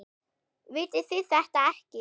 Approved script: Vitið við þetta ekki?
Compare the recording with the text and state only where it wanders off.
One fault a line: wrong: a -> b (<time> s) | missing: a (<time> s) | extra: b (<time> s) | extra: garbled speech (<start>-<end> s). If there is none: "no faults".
wrong: við -> þið (1.1 s)